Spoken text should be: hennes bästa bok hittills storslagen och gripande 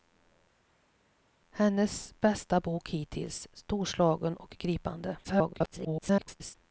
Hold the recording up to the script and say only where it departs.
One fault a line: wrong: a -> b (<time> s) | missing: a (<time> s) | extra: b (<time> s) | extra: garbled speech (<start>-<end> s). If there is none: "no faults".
extra: garbled speech (5.2-6.5 s)